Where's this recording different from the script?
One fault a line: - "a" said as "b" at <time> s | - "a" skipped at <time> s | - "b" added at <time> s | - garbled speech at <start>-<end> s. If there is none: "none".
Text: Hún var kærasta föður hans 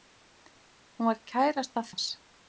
- "föður" skipped at 1.9 s